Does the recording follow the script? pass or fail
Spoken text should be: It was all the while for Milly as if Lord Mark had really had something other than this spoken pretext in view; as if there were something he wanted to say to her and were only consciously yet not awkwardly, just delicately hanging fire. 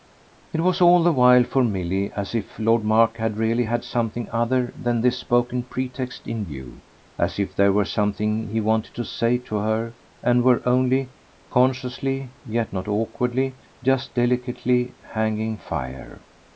pass